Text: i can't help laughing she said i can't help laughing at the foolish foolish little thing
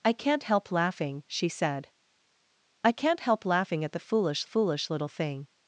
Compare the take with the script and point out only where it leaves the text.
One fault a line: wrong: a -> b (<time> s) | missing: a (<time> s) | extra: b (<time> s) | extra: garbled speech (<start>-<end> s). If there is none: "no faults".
no faults